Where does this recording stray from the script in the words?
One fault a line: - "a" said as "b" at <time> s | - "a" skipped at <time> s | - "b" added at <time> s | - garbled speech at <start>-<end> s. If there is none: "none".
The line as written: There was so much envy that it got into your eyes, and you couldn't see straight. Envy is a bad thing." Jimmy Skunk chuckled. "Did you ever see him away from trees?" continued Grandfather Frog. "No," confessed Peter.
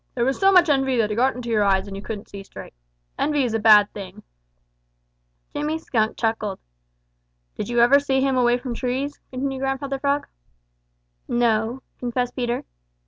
none